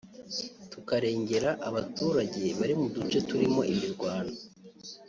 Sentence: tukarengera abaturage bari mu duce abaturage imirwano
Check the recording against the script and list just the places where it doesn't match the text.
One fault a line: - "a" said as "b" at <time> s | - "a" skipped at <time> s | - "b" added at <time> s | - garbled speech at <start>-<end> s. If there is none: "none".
- "abaturage" said as "turimo" at 3.3 s